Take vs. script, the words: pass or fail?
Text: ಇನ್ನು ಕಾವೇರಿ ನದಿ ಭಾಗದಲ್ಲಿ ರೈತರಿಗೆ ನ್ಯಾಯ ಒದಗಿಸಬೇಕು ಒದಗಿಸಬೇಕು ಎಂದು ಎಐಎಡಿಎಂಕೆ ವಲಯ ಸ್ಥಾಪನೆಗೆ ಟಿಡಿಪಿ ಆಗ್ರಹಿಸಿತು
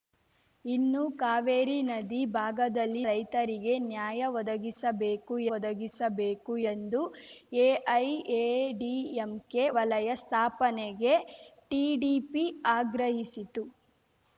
pass